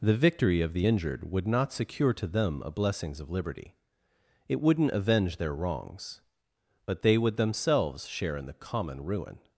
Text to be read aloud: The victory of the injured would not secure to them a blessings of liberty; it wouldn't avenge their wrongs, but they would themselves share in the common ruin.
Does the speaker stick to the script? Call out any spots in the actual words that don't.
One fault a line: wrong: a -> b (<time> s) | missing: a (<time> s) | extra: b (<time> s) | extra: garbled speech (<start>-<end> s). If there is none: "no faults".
no faults